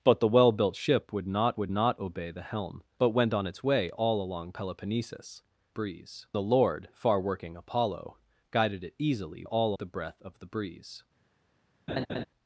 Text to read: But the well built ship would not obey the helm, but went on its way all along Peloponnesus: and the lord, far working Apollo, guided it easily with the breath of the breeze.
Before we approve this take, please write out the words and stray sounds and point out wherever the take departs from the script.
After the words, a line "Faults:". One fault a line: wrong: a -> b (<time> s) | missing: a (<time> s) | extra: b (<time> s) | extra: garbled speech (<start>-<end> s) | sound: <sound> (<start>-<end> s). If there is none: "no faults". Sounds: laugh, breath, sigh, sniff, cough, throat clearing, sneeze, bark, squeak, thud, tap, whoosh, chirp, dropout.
But the well built ship would not would not obey the helm, but went on its way all along Peloponnesus: breeze the lord, far working Apollo, guided it easily all the breath of the breeze.
Faults:
extra: would not (1.6 s)
wrong: and -> breeze (5.7 s)
wrong: with -> all (9.4 s)
sound: laugh (11.9-12.2 s)